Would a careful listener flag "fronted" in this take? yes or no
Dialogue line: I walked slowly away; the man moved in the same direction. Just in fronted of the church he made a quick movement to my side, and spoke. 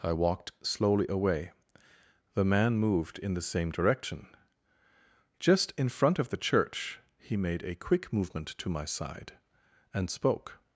yes